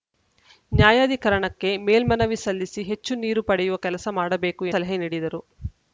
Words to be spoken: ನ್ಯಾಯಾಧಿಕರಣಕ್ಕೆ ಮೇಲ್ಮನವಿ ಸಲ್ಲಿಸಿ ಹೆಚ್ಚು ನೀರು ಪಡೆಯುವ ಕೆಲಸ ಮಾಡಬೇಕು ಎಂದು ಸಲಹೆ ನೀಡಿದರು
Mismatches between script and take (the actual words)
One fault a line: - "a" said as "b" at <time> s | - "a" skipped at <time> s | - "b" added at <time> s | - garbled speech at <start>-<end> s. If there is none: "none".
- "ಎಂದು" skipped at 4.7 s